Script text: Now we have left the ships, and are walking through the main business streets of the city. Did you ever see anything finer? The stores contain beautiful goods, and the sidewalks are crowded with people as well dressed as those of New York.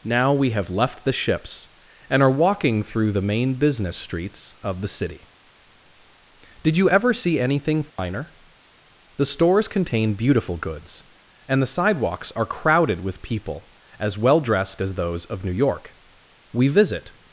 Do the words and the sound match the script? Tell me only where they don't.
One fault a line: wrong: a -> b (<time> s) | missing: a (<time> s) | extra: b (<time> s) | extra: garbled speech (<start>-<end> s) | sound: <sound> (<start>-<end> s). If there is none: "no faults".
sound: dropout (7.9-8.0 s)
extra: We visit (16.5 s)